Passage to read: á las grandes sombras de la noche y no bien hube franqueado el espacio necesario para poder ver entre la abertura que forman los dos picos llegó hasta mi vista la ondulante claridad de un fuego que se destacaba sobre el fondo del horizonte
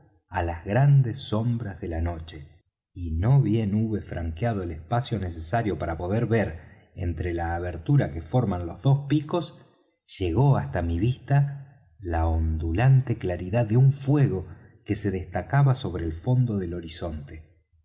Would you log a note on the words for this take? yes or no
no